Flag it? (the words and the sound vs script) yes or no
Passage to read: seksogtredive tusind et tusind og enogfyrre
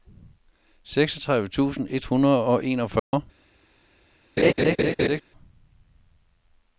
yes